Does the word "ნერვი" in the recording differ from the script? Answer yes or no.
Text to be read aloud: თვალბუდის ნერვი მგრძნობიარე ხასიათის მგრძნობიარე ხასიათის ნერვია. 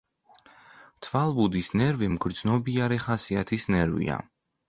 no